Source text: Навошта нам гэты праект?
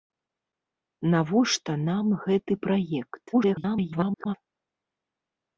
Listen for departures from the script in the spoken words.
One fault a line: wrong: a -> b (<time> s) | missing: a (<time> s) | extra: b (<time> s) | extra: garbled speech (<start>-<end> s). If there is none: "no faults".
extra: garbled speech (3.3-4.3 s)